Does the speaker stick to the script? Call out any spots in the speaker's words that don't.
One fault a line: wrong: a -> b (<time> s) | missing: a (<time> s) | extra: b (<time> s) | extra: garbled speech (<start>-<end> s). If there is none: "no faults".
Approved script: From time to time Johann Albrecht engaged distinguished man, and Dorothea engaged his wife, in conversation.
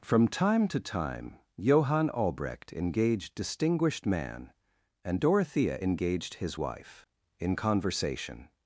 no faults